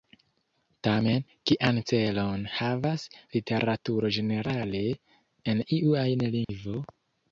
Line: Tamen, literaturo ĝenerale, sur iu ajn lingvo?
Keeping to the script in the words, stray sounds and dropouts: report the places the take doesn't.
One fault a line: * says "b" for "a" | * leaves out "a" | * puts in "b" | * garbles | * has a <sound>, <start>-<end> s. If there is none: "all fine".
* puts in "kian celon havas"
* says "en" for "sur"
* has a dropout, 6.4-6.5 s